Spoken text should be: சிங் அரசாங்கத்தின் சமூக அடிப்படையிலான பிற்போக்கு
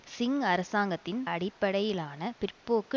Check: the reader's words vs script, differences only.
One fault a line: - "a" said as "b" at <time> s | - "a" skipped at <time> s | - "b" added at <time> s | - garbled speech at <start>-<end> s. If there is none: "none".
- "சமூக" skipped at 1.3 s